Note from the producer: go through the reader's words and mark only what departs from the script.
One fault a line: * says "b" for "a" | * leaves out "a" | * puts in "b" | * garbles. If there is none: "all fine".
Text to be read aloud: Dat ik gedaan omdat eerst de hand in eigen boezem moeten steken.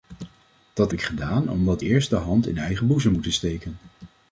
all fine